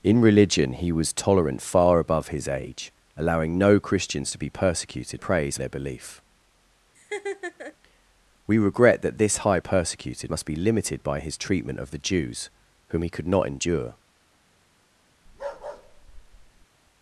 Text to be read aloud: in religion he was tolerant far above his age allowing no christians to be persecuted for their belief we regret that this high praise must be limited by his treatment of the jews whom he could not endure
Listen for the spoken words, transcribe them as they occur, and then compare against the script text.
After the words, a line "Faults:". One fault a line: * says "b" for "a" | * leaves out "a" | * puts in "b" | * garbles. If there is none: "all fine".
in religion he was tolerant far above his age allowing no christians to be persecuted praise their belief we regret that this high persecuted must be limited by his treatment of the jews whom he could not endure
Faults:
* says "praise" for "for"
* says "persecuted" for "praise"